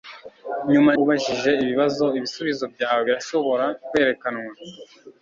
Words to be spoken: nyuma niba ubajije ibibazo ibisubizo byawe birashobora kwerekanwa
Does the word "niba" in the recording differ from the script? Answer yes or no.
yes